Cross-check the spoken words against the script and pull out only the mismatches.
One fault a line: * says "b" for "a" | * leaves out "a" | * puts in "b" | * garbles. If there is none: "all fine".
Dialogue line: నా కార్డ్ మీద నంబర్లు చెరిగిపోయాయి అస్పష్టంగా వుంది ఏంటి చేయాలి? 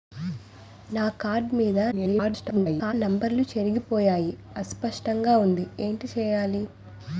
* garbles